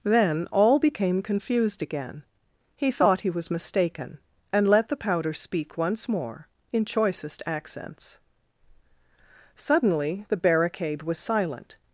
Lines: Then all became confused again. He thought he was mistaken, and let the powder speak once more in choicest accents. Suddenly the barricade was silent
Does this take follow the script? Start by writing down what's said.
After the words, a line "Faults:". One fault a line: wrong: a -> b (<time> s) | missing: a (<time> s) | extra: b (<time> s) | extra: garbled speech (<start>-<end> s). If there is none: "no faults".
Then all became confused again. He thought he was mistaken, and let the powder speak once more in choicest accents. Suddenly the barricade was silent
Faults:
no faults